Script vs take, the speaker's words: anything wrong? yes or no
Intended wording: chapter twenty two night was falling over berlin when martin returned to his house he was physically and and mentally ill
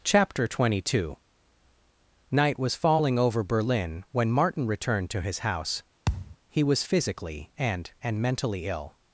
no